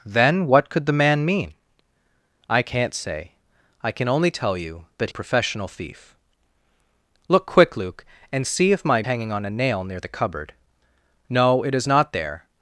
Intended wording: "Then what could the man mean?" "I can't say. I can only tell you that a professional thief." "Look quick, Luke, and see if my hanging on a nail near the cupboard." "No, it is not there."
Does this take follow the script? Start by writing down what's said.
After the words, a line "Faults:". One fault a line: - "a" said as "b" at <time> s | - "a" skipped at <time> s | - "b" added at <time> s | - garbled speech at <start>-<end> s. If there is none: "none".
"Then what could the man mean?" "I can't say. I can only tell you that a professional thief." "Look quick, Luke, and see if my hanging on a nail near the cupboard." "No, it is not there."
Faults:
none